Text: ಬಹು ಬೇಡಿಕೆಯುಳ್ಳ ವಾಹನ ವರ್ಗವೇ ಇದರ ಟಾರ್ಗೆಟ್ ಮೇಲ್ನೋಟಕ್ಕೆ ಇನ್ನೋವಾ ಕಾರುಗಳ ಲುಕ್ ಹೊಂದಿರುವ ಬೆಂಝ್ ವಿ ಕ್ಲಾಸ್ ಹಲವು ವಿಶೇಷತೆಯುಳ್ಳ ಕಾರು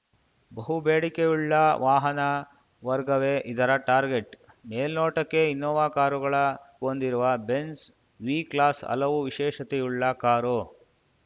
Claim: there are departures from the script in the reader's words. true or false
true